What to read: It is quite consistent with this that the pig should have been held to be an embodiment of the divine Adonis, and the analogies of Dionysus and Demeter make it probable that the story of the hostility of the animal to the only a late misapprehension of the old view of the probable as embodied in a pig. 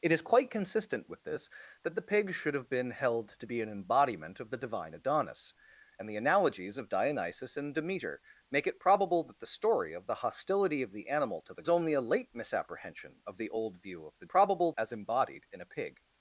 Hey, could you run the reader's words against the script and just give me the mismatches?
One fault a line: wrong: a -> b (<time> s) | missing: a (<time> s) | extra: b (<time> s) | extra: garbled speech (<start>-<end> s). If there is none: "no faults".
no faults